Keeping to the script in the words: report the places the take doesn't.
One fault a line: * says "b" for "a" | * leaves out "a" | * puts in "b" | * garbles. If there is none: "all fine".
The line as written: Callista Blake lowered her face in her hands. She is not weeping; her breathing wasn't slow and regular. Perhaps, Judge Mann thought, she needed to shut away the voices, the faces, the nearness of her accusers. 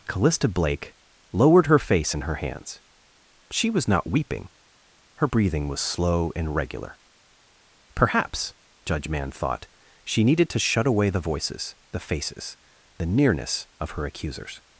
* says "was" for "is"
* says "was" for "wasn't"